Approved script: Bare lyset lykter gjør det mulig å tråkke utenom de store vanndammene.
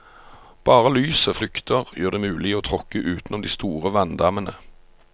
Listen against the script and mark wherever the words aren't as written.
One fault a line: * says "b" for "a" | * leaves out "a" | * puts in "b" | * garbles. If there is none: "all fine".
all fine